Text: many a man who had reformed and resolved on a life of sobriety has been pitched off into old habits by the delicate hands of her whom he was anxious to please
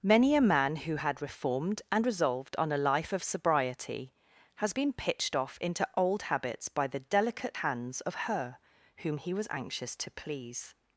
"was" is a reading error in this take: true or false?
false